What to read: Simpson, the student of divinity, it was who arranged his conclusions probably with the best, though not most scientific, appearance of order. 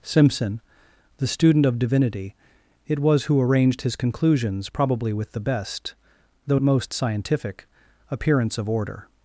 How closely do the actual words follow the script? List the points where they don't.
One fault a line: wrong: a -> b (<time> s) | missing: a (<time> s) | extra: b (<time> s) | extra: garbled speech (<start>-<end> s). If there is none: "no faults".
missing: not (6.6 s)